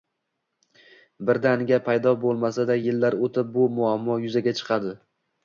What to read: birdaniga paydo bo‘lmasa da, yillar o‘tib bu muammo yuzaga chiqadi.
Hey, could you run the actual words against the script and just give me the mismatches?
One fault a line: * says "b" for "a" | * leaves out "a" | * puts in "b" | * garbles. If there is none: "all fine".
all fine